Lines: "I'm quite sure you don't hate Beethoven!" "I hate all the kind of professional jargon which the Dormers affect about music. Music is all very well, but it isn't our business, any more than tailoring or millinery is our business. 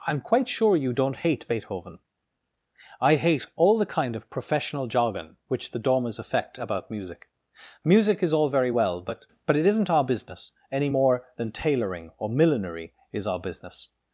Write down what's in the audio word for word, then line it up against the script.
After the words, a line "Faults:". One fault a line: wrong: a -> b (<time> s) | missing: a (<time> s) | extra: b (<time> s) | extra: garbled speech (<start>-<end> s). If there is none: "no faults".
"I'm quite sure you don't hate Beethoven!" "I hate all the kind of professional jargon which the Dormers affect about music. Music is all very well, but but it isn't our business, any more than tailoring or millinery is our business.
Faults:
extra: but (9.5 s)